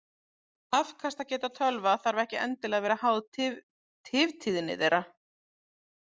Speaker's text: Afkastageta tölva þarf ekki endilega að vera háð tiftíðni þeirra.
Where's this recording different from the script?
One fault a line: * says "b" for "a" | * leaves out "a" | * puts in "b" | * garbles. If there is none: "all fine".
all fine